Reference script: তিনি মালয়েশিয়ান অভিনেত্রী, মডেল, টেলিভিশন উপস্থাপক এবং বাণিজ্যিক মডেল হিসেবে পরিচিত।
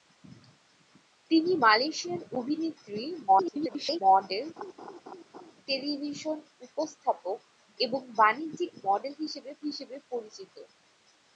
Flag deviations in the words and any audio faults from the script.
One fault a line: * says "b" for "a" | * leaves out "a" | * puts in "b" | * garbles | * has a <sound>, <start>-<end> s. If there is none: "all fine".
* garbles
* has a laugh, 4.6-5.5 s
* puts in "হিসেবে"